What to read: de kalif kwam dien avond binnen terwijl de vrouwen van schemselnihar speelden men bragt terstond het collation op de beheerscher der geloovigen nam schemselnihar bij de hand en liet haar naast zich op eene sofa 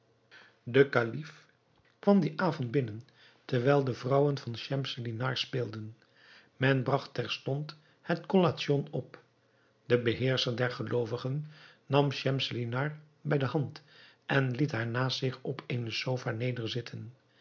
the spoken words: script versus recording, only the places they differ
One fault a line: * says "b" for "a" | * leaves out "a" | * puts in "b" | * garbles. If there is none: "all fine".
all fine